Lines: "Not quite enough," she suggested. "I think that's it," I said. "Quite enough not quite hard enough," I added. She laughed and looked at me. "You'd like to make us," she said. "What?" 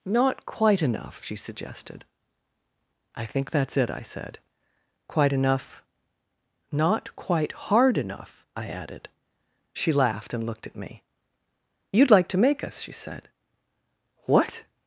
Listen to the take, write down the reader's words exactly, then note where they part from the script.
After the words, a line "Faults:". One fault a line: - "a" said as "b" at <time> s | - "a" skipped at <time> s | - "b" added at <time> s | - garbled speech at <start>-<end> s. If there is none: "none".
"Not quite enough," she suggested. "I think that's it," I said. "Quite enough not quite hard enough," I added. She laughed and looked at me. "You'd like to make us," she said. "What?"
Faults:
none